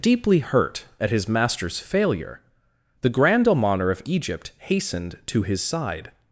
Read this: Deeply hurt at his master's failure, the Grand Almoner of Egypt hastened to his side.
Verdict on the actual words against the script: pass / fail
pass